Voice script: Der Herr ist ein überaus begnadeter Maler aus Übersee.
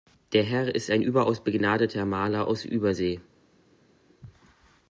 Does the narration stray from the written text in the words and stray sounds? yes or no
no